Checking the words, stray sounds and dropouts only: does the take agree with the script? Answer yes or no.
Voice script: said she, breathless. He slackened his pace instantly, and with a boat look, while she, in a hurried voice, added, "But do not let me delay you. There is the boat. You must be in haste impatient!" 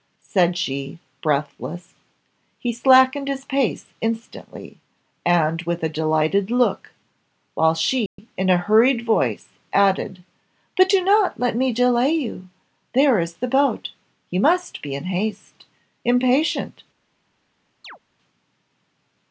no